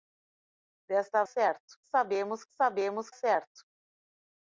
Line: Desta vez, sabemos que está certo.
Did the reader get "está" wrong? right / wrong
wrong